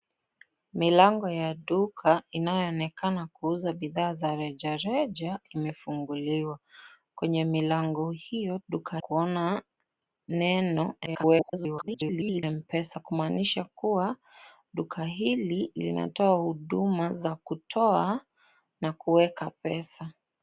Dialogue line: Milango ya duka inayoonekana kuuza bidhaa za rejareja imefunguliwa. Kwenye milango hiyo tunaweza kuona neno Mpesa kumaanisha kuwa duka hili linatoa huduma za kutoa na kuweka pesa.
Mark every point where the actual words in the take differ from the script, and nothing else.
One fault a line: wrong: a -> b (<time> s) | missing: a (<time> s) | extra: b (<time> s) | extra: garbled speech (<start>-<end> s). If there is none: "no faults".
wrong: tunaweza -> duka (8.7 s)
extra: garbled speech (11.1-12.4 s)